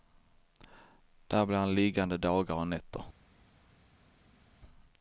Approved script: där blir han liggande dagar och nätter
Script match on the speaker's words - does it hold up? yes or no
yes